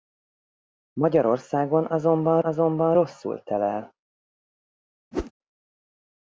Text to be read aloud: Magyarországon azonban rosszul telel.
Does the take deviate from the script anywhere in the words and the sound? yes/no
yes